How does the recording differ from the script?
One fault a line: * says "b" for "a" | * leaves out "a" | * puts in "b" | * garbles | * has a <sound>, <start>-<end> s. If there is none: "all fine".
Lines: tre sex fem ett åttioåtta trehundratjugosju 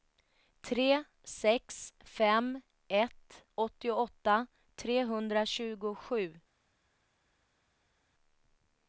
all fine